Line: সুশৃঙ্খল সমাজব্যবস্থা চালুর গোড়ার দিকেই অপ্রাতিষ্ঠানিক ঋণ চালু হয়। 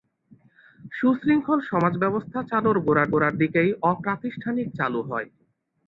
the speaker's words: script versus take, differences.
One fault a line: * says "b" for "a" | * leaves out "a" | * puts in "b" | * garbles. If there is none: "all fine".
* puts in "গোড়ার"
* leaves out "ঋণ"